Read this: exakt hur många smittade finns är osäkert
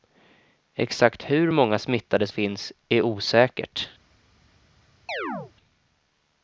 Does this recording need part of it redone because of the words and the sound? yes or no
yes